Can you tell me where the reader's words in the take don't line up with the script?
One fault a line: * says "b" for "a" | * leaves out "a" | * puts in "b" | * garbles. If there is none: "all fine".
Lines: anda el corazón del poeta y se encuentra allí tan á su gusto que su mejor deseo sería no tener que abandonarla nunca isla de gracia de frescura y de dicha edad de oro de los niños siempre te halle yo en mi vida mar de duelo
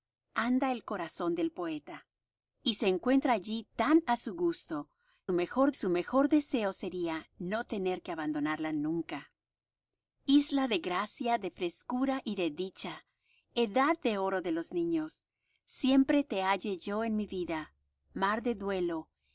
* says "mejor" for "que"